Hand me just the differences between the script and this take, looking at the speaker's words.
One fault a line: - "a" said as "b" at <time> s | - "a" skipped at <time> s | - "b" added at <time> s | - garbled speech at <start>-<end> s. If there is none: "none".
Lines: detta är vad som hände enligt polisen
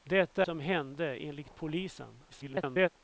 - "är vad" skipped at 0.5 s
- garbled speech at 2.3-2.9 s